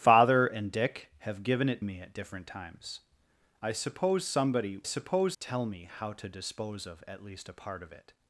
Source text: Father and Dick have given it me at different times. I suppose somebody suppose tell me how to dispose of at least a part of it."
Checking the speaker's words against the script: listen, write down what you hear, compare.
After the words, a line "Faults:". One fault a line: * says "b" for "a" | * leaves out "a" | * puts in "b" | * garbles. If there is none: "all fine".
Father and Dick have given it me at different times. I suppose somebody suppose tell me how to dispose of at least a part of it."
Faults:
all fine